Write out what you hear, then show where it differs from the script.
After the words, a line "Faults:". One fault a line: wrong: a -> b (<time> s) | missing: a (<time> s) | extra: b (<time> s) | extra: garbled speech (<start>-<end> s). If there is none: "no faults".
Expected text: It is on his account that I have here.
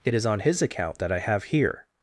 It is on his account that I have here.
Faults:
no faults